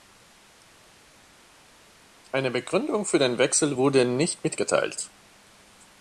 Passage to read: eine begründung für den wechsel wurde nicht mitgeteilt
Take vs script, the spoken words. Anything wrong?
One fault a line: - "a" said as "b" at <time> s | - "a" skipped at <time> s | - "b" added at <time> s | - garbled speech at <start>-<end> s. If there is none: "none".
none